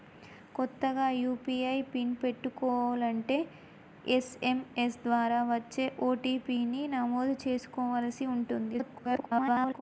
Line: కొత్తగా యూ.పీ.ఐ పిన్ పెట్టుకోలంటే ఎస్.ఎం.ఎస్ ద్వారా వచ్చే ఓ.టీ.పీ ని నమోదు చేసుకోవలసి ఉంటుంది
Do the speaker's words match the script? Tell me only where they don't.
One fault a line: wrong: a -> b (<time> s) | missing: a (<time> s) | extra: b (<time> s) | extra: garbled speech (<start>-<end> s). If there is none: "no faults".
extra: garbled speech (8.7-9.8 s)